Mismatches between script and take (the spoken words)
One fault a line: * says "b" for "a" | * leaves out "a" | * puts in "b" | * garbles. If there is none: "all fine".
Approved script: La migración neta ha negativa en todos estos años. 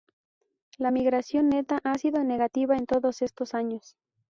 * puts in "sido"